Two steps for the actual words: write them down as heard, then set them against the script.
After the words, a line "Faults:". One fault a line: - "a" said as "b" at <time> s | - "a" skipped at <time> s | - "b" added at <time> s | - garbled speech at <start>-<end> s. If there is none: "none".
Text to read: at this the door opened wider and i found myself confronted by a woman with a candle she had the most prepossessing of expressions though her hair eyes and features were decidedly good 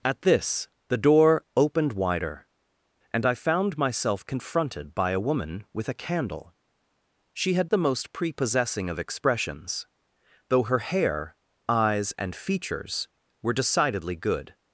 at this the door opened wider and i found myself confronted by a woman with a candle she had the most prepossessing of expressions though her hair eyes and features were decidedly good
Faults:
none